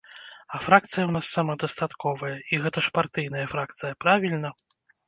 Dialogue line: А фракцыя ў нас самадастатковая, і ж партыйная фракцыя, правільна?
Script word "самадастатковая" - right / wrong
right